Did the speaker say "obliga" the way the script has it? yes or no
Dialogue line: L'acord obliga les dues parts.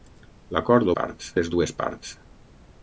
no